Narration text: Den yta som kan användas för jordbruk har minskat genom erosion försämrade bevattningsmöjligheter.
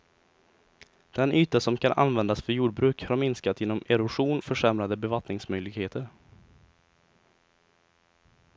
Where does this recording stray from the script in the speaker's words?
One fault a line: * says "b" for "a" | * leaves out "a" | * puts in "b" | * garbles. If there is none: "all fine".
all fine